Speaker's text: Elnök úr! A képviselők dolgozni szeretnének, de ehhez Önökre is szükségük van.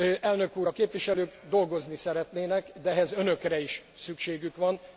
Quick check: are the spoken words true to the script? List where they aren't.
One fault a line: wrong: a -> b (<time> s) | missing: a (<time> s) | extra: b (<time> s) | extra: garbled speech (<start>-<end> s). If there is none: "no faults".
no faults